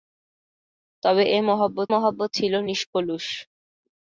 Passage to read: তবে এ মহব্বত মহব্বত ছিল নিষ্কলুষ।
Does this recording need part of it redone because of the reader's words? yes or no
no